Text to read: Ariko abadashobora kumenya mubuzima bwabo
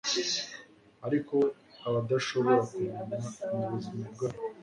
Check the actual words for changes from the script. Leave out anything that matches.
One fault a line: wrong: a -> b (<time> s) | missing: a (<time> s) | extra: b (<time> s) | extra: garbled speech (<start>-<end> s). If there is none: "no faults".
no faults